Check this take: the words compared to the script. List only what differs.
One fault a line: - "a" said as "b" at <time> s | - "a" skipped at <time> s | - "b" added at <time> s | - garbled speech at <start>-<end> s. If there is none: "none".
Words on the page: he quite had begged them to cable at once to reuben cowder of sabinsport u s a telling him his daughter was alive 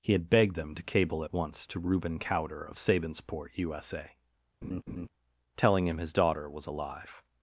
- "quite" skipped at 0.1 s